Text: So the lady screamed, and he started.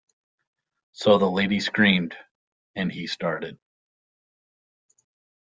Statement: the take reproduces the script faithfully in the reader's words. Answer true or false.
true